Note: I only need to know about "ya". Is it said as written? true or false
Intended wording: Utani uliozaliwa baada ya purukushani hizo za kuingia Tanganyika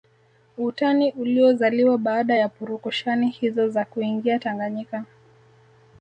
true